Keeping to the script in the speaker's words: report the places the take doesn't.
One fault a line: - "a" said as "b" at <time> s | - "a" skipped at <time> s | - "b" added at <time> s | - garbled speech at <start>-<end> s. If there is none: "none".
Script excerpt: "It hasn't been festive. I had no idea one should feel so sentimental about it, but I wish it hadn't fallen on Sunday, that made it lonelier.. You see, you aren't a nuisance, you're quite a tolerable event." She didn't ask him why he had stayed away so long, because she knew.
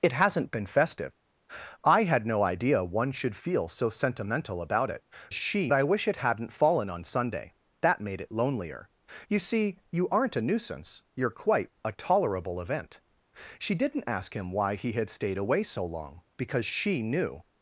- "but" said as "she" at 5.3 s